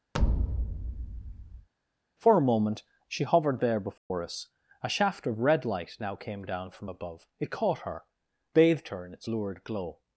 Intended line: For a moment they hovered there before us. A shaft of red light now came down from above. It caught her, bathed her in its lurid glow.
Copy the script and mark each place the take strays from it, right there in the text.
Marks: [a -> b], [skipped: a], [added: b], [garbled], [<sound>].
[thud] For a moment [they -> she] hovered there before [dropout] us. A shaft of red light now came down from above. It caught her, bathed her in its lurid glow.